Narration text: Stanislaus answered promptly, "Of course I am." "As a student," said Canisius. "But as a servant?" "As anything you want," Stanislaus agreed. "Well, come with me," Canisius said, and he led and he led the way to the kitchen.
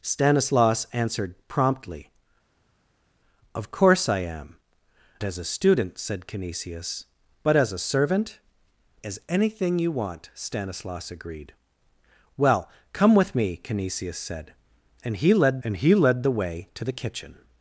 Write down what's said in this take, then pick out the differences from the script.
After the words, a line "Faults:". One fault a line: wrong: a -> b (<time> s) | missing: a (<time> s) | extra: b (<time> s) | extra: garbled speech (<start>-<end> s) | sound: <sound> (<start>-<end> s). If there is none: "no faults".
Stanislaus answered promptly, "Of course I am." "As a student," said Canisius. "But as a servant?" "As anything you want," Stanislaus agreed. "Well, come with me," Canisius said, and he led and he led the way to the kitchen.
Faults:
no faults